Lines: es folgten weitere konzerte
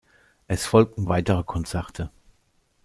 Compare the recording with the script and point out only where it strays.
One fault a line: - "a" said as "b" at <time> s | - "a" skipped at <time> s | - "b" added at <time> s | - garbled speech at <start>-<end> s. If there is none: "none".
none